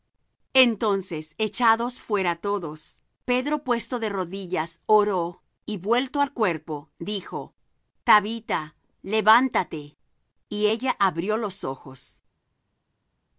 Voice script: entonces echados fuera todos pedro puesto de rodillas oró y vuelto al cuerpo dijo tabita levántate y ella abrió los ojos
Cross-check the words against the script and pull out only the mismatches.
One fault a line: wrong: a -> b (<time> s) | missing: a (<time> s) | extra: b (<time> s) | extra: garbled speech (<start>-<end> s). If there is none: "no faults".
no faults